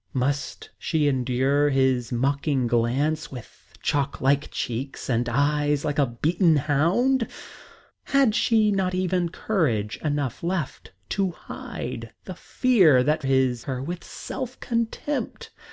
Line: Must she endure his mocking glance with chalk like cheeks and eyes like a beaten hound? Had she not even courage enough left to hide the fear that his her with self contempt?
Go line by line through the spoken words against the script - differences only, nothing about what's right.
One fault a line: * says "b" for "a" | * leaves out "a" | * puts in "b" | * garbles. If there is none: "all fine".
all fine